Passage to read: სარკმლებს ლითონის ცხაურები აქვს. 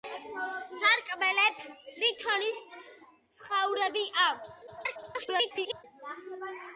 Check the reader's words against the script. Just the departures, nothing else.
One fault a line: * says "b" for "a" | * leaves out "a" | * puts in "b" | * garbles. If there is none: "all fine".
* garbles